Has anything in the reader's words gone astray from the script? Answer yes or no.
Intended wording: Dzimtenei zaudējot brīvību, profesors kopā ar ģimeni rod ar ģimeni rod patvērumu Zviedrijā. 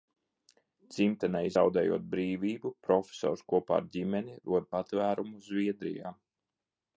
yes